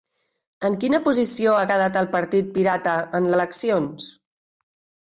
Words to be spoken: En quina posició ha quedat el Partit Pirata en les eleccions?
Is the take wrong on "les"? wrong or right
wrong